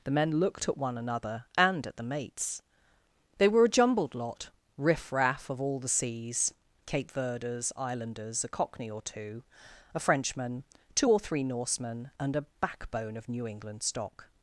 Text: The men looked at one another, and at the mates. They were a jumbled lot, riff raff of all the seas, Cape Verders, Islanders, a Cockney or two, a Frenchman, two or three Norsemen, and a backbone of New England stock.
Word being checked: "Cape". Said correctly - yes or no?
yes